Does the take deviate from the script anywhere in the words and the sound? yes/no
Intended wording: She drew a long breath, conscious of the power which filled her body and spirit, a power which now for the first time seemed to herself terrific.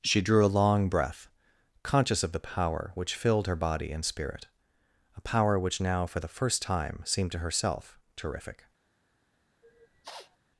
yes